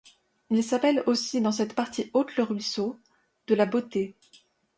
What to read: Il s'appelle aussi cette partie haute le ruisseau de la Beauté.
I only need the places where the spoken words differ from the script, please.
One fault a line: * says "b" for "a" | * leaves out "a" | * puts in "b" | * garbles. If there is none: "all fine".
* puts in "dans"